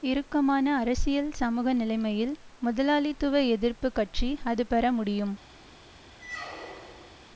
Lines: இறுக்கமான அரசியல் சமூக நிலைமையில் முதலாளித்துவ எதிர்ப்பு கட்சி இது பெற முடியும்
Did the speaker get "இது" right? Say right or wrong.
wrong